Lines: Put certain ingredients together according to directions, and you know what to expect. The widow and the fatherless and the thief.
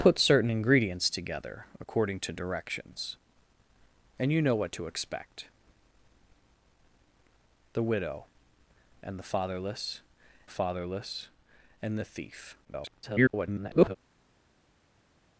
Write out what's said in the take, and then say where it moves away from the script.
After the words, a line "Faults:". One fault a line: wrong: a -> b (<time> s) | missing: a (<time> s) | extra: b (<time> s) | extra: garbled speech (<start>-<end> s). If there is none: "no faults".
Put certain ingredients together according to directions, and you know what to expect. The widow and the fatherless fatherless and the thief. [garbled]
Faults:
extra: fatherless (10.5 s)
extra: garbled speech (12.6-14.0 s)